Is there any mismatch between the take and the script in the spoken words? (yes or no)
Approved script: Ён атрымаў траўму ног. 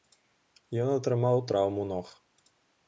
no